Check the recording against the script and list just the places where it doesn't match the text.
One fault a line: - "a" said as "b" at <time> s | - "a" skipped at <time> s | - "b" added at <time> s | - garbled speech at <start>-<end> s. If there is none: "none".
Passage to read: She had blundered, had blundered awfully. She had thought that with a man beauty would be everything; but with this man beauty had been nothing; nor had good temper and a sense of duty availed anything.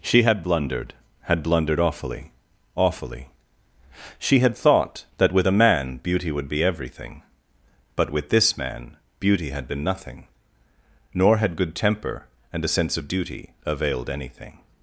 - "awfully" added at 2.7 s